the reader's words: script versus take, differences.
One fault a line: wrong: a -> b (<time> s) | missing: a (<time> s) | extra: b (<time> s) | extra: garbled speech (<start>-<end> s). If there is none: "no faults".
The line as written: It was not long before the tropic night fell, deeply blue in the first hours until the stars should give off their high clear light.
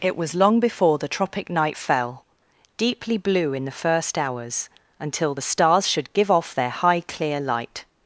missing: not (0.3 s)